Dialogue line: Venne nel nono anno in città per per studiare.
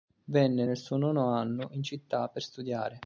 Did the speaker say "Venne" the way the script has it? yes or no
yes